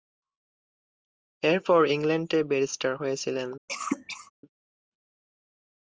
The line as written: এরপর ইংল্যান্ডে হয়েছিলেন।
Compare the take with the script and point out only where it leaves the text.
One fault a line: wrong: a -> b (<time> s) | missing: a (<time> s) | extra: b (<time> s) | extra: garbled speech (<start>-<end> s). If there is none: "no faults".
extra: ব্যারিস্টার (2.4 s)